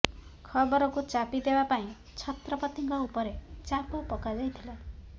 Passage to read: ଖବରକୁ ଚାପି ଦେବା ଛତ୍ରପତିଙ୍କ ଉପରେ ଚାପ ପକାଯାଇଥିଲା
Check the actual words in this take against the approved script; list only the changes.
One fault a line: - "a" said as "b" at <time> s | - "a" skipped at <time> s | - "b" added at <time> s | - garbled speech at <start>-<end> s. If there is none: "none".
- "ପାଇଁ" added at 1.7 s